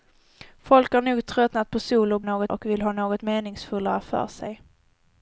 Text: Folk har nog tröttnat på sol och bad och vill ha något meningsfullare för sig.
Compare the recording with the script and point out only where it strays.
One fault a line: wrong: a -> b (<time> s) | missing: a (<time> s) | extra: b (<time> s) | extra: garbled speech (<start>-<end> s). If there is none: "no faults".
wrong: bad -> något (2.2 s)